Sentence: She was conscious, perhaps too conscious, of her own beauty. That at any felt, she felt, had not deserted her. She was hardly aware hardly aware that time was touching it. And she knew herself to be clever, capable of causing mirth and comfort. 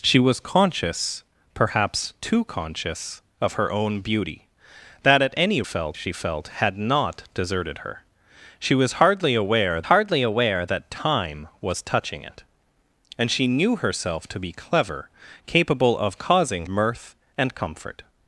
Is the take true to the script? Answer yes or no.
yes